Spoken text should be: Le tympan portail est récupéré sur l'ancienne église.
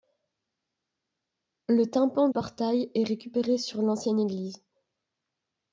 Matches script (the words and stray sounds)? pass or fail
pass